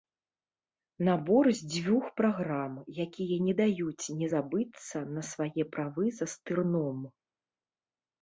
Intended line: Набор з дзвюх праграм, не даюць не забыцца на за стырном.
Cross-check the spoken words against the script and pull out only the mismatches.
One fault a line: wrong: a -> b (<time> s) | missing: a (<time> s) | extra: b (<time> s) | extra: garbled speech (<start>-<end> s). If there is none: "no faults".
extra: якія (3.1 s)
extra: свае правы (5.3 s)